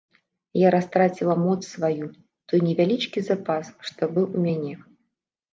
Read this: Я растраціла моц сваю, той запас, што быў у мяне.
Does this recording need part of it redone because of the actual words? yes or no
yes